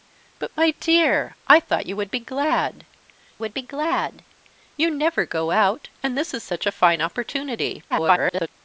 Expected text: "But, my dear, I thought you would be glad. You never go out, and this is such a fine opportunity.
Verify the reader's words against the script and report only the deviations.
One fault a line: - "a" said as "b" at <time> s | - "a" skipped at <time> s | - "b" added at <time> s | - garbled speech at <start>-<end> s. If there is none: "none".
- "would be glad" added at 3.4 s
- garbled speech at 7.9-8.5 s